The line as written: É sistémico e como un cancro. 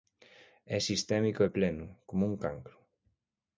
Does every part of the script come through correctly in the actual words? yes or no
no